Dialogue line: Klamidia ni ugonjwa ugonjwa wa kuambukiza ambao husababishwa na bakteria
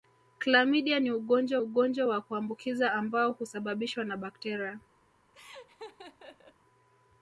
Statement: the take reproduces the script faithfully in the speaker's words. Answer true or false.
true